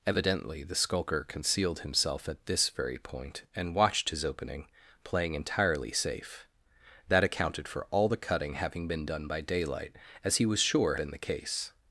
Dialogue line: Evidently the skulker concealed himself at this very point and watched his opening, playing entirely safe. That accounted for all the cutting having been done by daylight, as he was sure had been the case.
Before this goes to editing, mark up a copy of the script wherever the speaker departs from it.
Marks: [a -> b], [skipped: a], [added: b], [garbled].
Evidently the skulker concealed himself at this very point and watched his opening, playing entirely safe. That accounted for all the cutting having been done by daylight, as he was sure [skipped: had] been the case.